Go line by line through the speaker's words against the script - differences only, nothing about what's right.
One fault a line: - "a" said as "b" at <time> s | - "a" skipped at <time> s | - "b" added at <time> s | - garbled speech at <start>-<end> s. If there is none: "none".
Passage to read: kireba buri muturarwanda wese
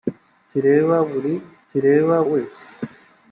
- "muturarwanda" said as "kireba" at 1.7 s